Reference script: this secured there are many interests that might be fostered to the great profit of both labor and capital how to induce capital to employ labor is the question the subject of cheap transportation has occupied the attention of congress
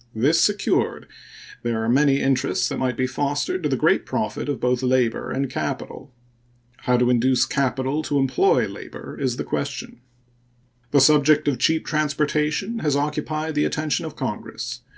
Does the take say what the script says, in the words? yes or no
yes